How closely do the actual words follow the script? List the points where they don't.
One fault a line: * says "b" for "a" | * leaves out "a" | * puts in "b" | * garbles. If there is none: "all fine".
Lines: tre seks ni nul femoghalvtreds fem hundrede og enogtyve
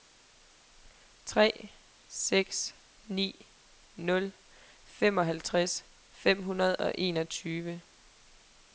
all fine